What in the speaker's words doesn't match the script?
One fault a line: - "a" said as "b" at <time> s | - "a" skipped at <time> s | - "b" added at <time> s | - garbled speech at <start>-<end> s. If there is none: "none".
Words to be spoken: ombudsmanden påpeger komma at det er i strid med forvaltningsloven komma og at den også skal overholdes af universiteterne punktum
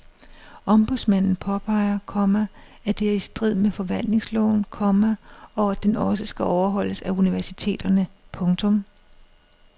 none